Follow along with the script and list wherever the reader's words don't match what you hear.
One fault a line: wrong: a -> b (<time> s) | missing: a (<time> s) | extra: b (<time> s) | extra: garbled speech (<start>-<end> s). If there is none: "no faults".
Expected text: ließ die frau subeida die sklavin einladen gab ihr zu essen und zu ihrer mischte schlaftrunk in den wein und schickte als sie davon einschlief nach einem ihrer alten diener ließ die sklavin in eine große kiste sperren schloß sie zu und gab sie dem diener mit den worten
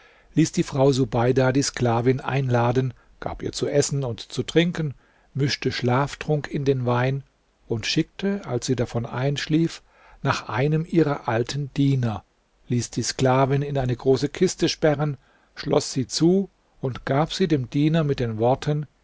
wrong: ihrer -> trinken (4.4 s)